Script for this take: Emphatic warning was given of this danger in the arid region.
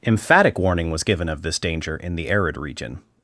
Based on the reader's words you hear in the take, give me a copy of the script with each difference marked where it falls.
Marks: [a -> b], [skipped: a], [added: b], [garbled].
Emphatic warning was given of this danger in the arid region.